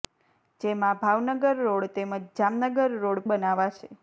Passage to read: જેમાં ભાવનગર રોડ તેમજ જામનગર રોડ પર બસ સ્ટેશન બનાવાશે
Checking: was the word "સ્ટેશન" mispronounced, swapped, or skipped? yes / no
yes